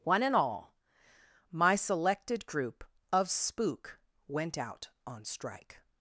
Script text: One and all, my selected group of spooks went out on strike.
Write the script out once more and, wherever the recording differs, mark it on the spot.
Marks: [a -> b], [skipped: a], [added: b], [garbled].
One and all, my selected group of [spooks -> spook] went out on strike.